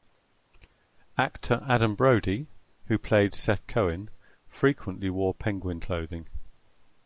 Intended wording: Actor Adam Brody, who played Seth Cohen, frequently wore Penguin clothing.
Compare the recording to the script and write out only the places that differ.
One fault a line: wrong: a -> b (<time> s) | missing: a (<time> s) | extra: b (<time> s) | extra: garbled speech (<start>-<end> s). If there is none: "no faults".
no faults